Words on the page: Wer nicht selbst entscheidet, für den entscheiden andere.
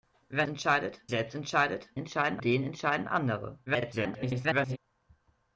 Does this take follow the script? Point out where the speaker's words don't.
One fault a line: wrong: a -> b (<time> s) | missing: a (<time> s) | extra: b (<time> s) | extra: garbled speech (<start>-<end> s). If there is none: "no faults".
wrong: nicht -> entscheidet (0.5 s)
wrong: für -> entscheiden (1.9 s)
extra: garbled speech (3.7-4.8 s)